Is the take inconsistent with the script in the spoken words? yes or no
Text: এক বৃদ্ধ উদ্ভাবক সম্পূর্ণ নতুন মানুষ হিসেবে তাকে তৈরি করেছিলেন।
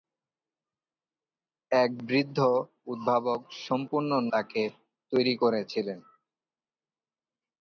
yes